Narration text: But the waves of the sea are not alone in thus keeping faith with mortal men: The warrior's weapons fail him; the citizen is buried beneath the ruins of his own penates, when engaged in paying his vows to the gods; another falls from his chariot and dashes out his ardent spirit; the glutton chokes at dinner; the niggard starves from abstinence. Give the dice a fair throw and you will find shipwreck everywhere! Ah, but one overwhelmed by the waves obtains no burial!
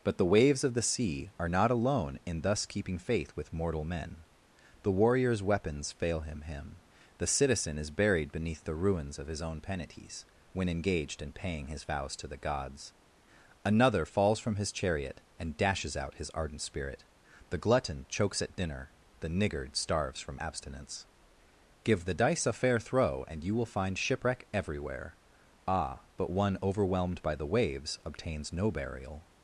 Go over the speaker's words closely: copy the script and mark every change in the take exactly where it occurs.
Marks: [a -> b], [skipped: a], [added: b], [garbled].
But the waves of the sea are not alone in thus keeping faith with mortal men: The warrior's weapons fail him; [added: him] the citizen is buried beneath the ruins of his own penates, when engaged in paying his vows to the gods; another falls from his chariot and dashes out his ardent spirit; the glutton chokes at dinner; the niggard starves from abstinence. Give the dice a fair throw and you will find shipwreck everywhere! Ah, but one overwhelmed by the waves obtains no burial!